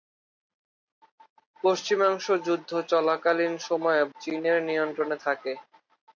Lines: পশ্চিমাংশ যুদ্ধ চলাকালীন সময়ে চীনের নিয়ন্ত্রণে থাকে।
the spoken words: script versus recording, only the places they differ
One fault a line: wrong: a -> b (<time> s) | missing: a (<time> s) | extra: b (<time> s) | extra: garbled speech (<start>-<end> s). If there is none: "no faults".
no faults